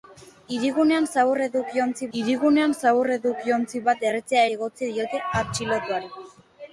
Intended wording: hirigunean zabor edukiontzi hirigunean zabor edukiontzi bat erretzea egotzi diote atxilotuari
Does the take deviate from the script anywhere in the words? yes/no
no